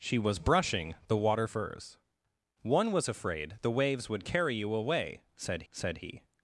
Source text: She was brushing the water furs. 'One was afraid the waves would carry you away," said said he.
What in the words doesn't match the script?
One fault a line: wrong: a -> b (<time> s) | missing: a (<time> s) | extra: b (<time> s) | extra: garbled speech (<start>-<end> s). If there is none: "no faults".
no faults